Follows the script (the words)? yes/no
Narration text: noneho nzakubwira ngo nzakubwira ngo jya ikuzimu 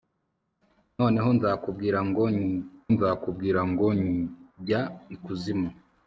yes